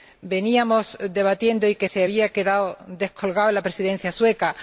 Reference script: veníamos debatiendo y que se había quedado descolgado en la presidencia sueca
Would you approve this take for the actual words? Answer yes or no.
yes